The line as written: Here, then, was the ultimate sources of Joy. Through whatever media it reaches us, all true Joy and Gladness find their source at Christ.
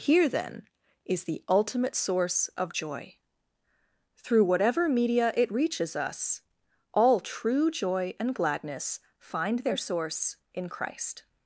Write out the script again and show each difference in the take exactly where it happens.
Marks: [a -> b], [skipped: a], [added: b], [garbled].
Here, then, [was -> is] the ultimate [sources -> source] of Joy. Through whatever media it reaches us, all true Joy and Gladness find their source [at -> in] Christ.